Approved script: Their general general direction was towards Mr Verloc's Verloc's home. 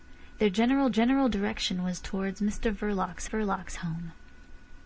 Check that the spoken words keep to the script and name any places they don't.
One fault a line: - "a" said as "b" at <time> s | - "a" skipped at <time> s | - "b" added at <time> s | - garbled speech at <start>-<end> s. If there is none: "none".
none